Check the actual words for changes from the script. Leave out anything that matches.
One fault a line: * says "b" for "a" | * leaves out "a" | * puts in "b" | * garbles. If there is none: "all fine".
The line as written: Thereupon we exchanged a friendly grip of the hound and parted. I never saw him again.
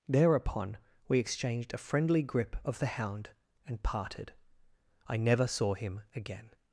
all fine